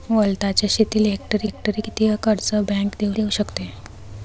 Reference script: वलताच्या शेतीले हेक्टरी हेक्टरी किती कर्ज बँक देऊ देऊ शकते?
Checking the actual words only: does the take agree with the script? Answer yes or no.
yes